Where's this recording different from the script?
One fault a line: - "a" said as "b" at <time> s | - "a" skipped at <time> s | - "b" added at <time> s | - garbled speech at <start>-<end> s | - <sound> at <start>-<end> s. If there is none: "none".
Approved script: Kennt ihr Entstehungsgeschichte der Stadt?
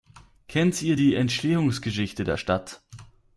- "die" added at 0.9 s